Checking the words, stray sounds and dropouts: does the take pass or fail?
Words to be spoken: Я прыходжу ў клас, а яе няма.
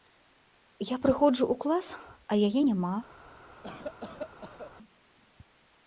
fail